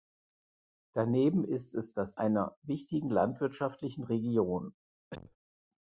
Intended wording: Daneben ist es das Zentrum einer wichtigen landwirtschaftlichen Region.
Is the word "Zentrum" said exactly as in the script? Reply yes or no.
no